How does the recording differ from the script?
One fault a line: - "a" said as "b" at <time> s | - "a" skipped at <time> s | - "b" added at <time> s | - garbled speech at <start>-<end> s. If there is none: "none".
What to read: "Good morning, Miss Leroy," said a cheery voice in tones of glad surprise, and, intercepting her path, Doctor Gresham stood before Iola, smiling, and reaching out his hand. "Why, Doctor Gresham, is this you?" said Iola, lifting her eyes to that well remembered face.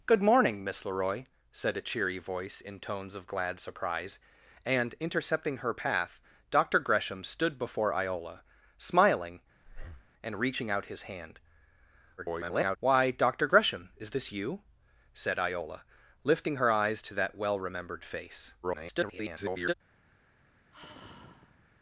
- garbled speech at 12.2-12.8 s
- garbled speech at 18.6-19.7 s